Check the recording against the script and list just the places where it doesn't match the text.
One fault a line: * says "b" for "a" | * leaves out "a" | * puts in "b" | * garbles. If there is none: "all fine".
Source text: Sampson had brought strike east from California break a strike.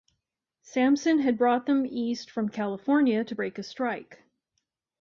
* says "them" for "strike"
* puts in "to"